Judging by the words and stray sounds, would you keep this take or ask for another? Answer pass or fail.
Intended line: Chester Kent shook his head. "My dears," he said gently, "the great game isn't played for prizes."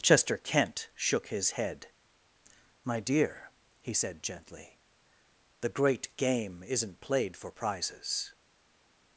fail